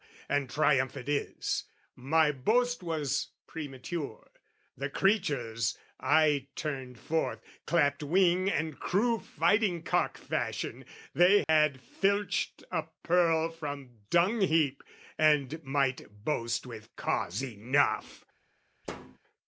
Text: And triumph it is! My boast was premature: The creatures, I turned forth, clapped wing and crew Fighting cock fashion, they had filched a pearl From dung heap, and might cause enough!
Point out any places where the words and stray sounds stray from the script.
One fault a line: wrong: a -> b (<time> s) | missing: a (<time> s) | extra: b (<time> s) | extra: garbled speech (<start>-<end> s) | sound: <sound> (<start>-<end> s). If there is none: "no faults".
sound: dropout (11.4-11.5 s)
extra: boast with (16.2 s)
sound: thud (18.8-19.2 s)